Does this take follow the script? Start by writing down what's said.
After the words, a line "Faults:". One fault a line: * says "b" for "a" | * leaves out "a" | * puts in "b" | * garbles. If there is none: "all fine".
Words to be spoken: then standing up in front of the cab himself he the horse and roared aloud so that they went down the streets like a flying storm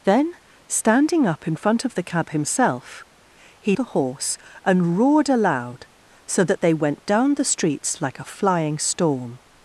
then standing up in front of the cab himself he the horse and roared aloud so that they went down the streets like a flying storm
Faults:
all fine